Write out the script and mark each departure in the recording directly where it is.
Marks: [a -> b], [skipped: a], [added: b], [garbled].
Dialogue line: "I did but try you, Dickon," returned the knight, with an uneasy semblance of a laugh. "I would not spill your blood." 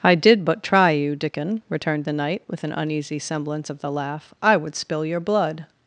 "I did but try you, Dickon," returned the knight, with an uneasy semblance of [a -> the] laugh. "I would [skipped: not] spill your blood."